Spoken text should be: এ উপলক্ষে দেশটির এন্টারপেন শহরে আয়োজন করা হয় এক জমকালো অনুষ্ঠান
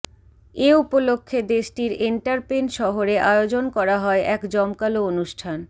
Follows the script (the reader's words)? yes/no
yes